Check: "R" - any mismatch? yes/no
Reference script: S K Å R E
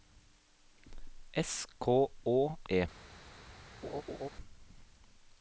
yes